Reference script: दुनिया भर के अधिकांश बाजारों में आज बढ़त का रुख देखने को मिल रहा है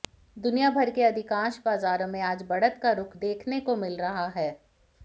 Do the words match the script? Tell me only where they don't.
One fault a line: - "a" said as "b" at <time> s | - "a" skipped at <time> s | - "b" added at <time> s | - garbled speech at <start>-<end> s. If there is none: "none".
none